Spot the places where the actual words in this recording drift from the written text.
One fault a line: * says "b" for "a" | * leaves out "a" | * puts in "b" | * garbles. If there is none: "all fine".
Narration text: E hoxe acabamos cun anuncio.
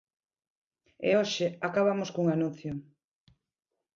all fine